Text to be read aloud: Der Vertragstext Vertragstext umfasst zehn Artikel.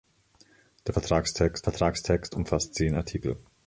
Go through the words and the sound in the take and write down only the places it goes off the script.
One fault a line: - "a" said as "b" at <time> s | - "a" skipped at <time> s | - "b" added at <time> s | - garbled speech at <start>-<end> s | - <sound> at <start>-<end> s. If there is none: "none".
none